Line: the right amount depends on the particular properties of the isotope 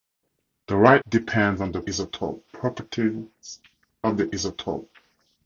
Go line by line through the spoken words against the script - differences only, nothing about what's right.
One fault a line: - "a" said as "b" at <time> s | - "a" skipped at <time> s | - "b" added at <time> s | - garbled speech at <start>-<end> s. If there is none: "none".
- "amount" skipped at 1.0 s
- "particular" said as "isotope" at 1.8 s